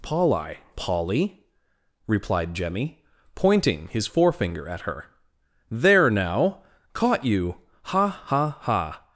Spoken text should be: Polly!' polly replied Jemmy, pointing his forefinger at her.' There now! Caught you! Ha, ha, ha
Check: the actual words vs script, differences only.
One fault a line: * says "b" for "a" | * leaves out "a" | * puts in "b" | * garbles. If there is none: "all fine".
all fine